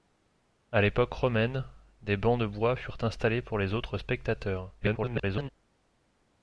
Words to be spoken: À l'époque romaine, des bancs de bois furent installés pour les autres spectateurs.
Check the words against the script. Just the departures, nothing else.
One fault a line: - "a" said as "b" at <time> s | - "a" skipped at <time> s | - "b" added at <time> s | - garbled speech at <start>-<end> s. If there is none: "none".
- garbled speech at 4.8-5.5 s